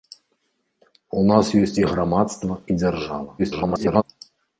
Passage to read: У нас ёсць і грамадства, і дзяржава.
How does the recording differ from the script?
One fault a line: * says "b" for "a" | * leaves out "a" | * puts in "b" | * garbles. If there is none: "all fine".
* garbles